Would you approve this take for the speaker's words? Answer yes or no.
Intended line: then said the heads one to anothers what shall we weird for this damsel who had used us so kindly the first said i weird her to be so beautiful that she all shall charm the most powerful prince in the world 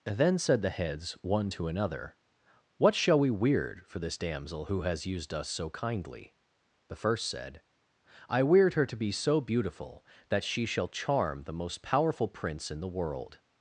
no